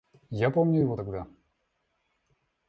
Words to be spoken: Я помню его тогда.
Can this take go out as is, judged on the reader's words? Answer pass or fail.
pass